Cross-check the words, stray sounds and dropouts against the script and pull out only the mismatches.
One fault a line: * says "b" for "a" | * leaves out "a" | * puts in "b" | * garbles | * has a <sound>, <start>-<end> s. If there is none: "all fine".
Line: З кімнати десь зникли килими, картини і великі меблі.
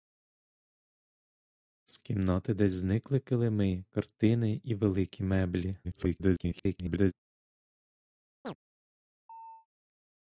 * garbles
* has a chirp, 8.4-8.6 s
* has a chirp, 9.3-9.7 s